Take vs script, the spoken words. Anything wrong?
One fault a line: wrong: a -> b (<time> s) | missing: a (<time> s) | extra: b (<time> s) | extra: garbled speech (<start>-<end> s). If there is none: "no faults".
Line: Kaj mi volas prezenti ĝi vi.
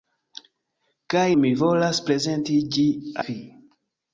no faults